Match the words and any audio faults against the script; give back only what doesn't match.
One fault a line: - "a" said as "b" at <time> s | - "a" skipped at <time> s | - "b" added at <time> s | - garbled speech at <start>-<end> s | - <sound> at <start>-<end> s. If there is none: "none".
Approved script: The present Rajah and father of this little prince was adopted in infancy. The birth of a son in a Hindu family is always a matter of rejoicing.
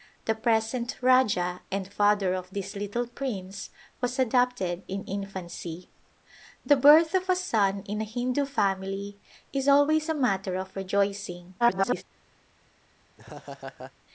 - garbled speech at 11.6-12.0 s
- laugh at 13.2-13.9 s